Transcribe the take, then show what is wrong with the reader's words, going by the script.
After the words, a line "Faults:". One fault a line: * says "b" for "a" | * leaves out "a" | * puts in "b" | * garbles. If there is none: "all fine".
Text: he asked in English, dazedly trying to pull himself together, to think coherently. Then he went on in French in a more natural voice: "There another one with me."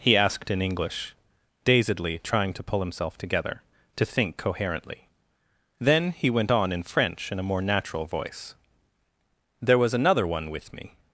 he asked in English, dazedly trying to pull himself together, to think coherently. Then he went on in French in a more natural voice: "There was another one with me."
Faults:
* puts in "was"